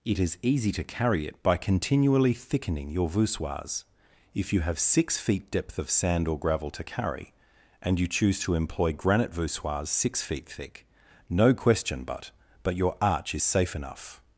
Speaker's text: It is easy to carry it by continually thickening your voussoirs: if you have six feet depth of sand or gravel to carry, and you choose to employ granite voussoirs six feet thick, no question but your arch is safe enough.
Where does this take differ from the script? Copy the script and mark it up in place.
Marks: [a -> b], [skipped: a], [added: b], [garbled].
It is easy to carry it by continually thickening your voussoirs: if you have six feet depth of sand or gravel to carry, and you choose to employ granite voussoirs six feet thick, no question but [added: but] your arch is safe enough.